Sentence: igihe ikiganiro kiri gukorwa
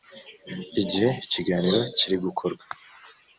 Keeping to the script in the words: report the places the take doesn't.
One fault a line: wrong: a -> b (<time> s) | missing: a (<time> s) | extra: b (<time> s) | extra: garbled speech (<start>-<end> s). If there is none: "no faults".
no faults